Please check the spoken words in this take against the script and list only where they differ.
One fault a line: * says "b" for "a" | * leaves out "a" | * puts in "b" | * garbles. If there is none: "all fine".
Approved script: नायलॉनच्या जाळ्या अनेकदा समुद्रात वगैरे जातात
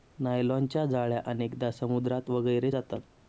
all fine